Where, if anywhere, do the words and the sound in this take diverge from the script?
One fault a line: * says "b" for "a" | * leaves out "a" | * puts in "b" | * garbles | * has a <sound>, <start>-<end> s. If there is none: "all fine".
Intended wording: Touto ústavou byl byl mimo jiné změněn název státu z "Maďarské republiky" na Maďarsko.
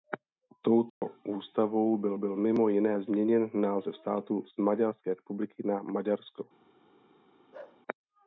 * has a dropout, 0.9-1.0 s
* has a bark, 7.5-7.8 s